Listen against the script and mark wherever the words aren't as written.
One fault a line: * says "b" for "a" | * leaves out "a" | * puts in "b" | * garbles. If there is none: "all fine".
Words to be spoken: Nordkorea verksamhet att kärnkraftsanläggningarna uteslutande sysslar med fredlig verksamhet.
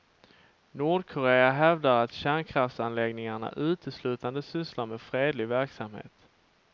* says "hävdar" for "verksamhet"